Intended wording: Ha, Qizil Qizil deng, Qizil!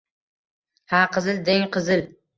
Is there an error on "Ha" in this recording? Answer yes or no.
no